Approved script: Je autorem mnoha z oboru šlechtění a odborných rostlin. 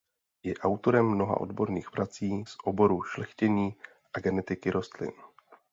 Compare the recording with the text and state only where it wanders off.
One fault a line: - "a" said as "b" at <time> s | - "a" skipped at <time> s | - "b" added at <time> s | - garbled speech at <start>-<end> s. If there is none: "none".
- "odborných prací" added at 1.4 s
- "odborných" said as "genetiky" at 4.2 s